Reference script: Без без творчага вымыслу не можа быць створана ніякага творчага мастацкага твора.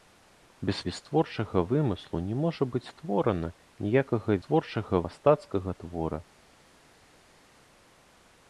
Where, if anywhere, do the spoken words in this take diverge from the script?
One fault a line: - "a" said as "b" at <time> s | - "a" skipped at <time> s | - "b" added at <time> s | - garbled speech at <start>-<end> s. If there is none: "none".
none